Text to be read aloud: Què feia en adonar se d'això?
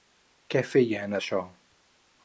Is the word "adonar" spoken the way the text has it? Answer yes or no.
no